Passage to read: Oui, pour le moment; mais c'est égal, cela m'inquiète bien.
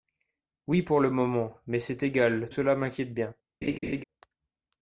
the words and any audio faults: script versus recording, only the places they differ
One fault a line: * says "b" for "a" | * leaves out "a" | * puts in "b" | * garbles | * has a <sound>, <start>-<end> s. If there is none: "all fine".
* has a laugh, 3.6-4.0 s